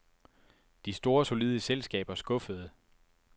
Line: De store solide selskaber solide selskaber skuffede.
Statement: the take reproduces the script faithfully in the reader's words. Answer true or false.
false